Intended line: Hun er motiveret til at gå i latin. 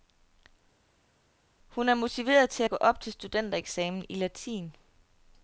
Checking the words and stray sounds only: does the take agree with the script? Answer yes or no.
no